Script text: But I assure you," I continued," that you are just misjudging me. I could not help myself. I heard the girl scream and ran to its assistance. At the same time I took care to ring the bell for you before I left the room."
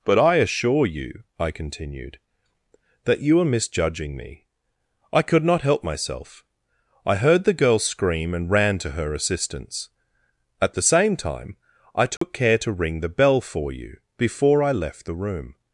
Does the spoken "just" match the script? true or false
false